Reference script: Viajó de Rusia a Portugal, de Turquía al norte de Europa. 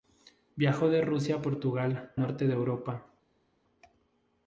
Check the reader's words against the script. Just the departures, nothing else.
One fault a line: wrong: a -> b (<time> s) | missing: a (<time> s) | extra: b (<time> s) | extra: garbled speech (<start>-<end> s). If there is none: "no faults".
missing: de Turquía al (2.1 s)